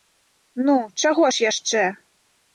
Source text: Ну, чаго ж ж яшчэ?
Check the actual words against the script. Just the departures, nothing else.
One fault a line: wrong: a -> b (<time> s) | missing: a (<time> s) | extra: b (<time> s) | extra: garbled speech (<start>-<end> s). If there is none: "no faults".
missing: ж (1.5 s)